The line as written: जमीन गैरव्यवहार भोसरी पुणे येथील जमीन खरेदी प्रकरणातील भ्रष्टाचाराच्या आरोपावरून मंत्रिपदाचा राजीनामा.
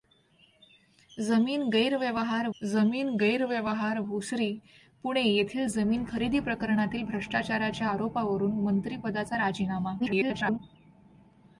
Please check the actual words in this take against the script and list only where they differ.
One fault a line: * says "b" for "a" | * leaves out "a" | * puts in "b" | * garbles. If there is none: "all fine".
* puts in "जमीन गैरव्यवहार"
* garbles